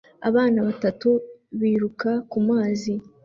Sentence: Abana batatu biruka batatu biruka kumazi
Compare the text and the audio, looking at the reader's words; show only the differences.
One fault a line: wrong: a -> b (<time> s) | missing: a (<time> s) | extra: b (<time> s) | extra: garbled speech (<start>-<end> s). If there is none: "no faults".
missing: batatu biruka (2.1 s)